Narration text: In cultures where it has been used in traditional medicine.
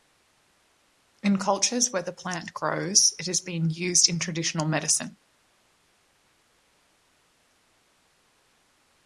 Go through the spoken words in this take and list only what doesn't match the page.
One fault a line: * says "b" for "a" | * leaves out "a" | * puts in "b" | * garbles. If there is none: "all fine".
* puts in "the plant grows"